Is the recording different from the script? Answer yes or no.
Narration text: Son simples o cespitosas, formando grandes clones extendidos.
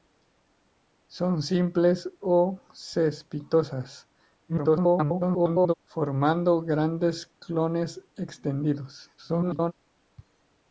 yes